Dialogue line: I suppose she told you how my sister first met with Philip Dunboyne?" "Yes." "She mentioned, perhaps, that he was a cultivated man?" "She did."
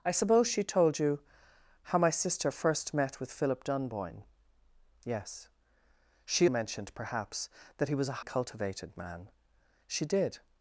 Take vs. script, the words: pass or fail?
pass